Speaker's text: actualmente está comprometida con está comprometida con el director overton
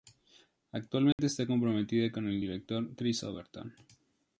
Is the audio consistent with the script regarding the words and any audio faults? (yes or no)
no